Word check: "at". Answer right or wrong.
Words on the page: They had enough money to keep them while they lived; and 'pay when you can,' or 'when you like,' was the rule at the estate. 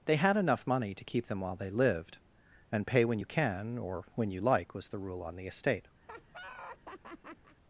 wrong